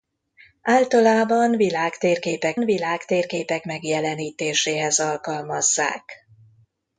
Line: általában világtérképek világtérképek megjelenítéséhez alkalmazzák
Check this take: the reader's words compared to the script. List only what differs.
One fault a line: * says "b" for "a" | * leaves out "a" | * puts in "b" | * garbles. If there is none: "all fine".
all fine